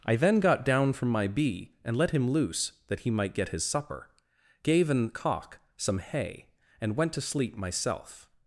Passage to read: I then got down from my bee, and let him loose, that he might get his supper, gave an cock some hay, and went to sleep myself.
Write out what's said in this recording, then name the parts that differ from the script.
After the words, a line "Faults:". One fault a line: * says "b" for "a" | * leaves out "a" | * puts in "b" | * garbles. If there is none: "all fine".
I then got down from my bee, and let him loose, that he might get his supper, gave an cock some hay, and went to sleep myself.
Faults:
all fine